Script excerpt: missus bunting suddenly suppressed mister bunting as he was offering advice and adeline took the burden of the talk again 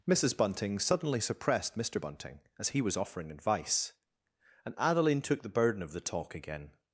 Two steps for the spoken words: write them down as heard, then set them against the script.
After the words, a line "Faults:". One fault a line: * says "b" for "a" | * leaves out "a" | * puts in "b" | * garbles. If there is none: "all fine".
missus bunting suddenly suppressed mister bunting as he was offering advice and adeline took the burden of the talk again
Faults:
all fine